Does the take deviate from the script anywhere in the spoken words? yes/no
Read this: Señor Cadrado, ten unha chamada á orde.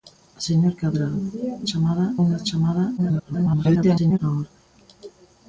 yes